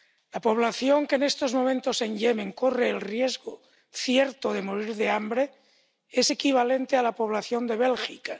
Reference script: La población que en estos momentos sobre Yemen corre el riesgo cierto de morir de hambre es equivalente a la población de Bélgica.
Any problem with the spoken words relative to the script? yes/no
yes